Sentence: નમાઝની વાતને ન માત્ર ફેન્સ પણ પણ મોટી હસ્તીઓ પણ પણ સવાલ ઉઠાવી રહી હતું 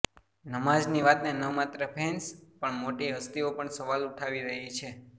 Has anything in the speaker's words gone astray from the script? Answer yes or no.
yes